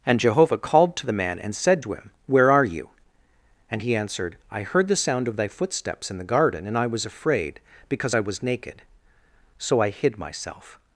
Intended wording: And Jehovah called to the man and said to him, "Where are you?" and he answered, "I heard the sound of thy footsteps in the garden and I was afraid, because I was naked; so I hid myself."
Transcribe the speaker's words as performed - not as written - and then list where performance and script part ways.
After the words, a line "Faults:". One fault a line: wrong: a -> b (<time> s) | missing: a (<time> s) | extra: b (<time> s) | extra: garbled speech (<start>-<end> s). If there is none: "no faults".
And Jehovah called to the man and said to him, "Where are you?" and he answered, "I heard the sound of thy footsteps in the garden and I was afraid, because I was naked; so I hid myself."
Faults:
no faults